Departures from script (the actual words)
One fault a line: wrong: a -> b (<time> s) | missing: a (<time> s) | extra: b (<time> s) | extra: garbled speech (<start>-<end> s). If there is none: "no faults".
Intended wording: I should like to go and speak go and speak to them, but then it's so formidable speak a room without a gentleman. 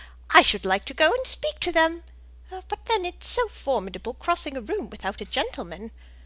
missing: go and speak (1.6 s)
wrong: speak -> crossing (4.2 s)